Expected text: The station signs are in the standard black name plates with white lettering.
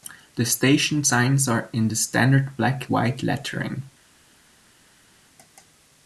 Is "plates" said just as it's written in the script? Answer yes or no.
no